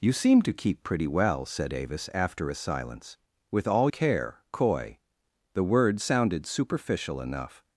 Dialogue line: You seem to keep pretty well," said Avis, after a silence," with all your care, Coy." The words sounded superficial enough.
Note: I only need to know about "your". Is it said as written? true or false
false